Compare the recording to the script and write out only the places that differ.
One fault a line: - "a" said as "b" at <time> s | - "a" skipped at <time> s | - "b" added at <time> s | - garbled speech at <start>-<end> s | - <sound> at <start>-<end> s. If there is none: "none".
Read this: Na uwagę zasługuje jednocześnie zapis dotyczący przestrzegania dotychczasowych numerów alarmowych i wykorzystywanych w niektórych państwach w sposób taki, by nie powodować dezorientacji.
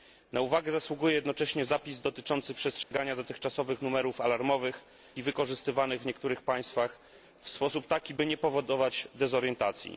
- dropout at 2.8-2.9 s